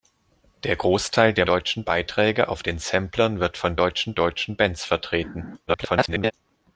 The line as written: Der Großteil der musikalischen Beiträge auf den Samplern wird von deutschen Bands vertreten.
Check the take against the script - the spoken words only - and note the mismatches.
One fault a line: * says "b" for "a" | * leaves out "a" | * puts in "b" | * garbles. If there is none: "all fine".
* says "deutschen" for "musikalischen"
* puts in "deutschen"
* garbles